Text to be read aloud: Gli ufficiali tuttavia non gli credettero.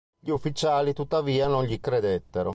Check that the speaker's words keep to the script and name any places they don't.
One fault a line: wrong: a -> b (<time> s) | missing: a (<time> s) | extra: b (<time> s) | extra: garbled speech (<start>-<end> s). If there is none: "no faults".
no faults